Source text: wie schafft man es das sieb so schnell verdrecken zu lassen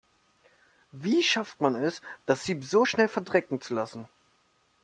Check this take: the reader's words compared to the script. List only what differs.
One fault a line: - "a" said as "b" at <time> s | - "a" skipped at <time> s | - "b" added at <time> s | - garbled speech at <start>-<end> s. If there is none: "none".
none